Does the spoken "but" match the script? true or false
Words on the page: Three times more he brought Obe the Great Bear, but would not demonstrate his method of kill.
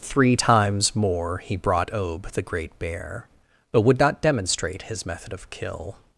true